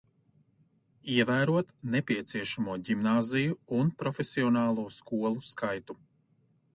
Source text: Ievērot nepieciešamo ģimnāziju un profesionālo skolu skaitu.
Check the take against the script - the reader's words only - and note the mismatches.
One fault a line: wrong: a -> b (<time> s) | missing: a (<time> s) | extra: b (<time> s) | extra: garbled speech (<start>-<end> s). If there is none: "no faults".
no faults